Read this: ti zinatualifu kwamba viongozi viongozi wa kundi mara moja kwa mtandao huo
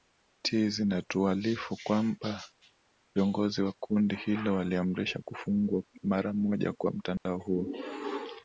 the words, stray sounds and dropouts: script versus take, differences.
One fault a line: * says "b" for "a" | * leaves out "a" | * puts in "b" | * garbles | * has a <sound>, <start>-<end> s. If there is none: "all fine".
* leaves out "viongozi"
* puts in "hilo waliamrisha kufungwa"
* has a dropout, 7.2-7.3 s